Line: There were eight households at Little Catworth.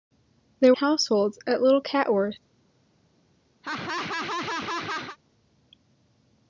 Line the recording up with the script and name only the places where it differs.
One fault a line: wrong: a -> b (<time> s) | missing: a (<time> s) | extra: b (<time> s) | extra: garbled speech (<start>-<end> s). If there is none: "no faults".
missing: were eight (0.7 s)